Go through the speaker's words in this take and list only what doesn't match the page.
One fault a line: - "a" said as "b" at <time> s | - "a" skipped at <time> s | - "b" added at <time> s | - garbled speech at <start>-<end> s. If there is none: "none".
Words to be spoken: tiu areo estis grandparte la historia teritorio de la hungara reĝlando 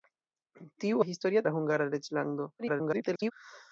- "areo estis grandparte" skipped at 1.0 s
- "teritorio" skipped at 1.5 s
- garbled speech at 2.6-3.3 s